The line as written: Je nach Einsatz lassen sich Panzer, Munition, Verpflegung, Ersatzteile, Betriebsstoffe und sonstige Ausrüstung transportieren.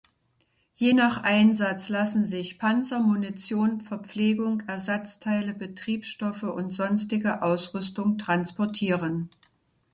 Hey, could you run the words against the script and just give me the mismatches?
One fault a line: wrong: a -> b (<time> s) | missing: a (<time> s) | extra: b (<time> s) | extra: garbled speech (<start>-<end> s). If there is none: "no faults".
no faults